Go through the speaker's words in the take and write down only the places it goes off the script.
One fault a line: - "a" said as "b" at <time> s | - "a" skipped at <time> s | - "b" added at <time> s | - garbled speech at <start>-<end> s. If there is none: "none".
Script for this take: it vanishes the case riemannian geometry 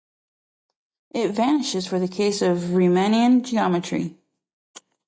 - "for" added at 1.9 s
- "of" added at 2.4 s